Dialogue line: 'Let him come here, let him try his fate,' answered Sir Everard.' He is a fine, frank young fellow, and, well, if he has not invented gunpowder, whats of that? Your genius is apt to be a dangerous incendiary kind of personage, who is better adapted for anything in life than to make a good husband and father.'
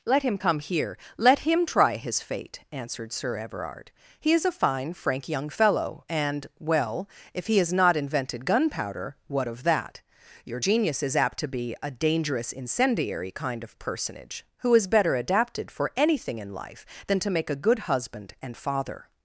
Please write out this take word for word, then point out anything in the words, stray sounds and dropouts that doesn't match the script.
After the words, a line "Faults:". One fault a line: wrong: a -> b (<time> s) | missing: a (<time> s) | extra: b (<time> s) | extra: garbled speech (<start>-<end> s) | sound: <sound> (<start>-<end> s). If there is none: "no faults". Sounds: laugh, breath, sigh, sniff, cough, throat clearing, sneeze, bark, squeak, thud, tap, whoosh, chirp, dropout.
'Let him come here, let him try his fate,' answered Sir Everard.' He is a fine, frank young fellow, and, well, if he has not invented gunpowder, what of that? Your genius is apt to be a dangerous incendiary kind of personage, who is better adapted for anything in life than to make a good husband and father.'
Faults:
wrong: whats -> what (9.3 s)